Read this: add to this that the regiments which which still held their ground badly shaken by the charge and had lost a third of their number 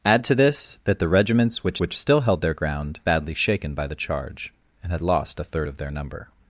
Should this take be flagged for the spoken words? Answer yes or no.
no